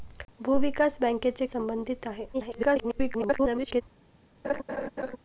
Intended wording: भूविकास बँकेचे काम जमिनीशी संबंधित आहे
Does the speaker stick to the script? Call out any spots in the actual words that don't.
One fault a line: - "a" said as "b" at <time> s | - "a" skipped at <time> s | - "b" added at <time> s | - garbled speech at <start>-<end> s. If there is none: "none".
- "काम जमिनीशी" skipped at 1.4 s
- garbled speech at 2.3-3.8 s